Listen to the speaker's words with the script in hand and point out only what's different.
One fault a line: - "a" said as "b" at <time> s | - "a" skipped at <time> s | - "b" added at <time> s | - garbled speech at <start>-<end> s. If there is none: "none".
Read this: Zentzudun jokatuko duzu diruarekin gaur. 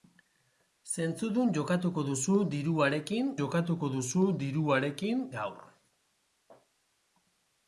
- "jokatuko duzu diruarekin" added at 3.4 s